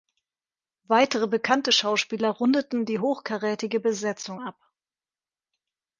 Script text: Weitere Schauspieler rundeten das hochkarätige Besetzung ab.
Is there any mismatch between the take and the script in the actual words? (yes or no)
yes